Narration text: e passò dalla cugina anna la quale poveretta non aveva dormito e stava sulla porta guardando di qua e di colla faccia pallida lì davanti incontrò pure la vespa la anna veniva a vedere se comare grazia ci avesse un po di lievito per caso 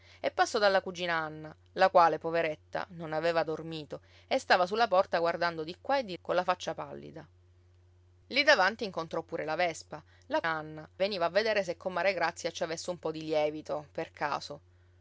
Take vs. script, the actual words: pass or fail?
pass